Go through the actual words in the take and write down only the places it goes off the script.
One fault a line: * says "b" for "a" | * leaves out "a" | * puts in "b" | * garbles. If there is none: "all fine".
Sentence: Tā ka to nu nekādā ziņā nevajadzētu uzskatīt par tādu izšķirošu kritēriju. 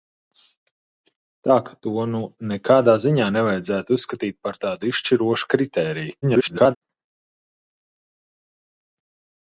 * garbles